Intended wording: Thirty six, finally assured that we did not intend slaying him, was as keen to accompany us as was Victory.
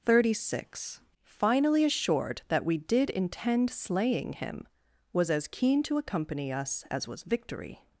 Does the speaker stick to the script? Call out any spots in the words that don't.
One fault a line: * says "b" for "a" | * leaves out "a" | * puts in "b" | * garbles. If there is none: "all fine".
* leaves out "not"